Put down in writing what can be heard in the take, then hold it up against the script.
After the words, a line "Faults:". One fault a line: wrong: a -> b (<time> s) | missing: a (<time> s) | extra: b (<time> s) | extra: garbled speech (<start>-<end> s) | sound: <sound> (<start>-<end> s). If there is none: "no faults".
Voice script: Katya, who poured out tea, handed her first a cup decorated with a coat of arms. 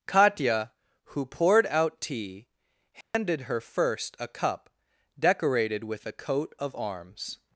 Katya, who poured out tea, handed her first a cup decorated with a coat of arms.
Faults:
sound: dropout (3.0-3.1 s)